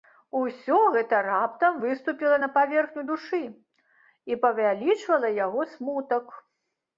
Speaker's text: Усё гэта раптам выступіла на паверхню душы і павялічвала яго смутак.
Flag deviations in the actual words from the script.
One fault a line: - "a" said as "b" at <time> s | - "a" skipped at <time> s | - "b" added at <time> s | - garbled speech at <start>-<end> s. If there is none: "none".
none